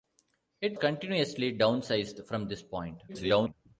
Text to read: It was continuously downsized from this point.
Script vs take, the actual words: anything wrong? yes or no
yes